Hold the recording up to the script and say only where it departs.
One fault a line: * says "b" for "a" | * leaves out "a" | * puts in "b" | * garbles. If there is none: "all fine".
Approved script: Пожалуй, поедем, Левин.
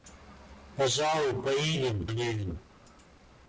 all fine